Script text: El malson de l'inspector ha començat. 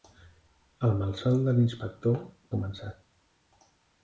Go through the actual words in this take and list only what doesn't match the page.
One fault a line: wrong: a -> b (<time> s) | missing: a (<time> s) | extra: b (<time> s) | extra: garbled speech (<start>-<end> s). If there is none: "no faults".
no faults